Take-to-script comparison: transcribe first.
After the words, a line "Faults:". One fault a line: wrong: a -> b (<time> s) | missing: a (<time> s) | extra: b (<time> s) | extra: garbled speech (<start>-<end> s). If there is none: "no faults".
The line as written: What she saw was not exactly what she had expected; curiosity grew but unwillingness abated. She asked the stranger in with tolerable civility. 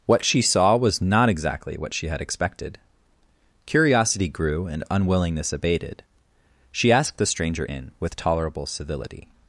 What she saw was not exactly what she had expected; curiosity grew and unwillingness abated. She asked the stranger in with tolerable civility.
Faults:
wrong: but -> and (4.7 s)